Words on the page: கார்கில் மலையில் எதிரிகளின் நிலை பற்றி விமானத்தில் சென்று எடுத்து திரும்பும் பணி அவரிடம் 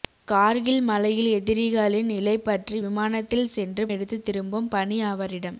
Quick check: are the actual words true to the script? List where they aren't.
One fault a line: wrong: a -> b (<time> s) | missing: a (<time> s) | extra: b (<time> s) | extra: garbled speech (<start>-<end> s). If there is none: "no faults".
no faults